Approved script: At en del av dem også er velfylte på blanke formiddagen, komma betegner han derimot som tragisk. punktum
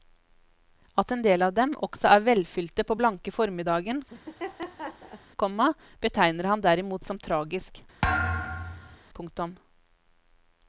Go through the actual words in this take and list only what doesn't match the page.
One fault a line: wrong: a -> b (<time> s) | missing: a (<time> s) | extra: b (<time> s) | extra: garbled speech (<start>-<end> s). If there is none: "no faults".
no faults